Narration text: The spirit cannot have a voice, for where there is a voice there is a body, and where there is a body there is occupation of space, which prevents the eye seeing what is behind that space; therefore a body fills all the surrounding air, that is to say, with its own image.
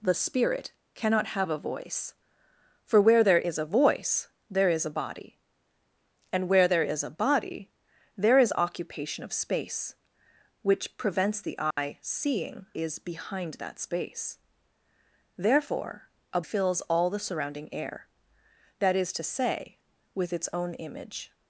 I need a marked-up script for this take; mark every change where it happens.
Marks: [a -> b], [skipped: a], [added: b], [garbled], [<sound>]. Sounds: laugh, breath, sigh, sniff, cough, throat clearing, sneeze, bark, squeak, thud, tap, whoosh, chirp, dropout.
The spirit cannot have a voice, for where there is a voice there is a body, and where there is a body there is occupation of space, which prevents the eye [dropout] seeing [skipped: what] is behind that space; therefore a [skipped: body] fills all the surrounding air, that is to say, with its own image.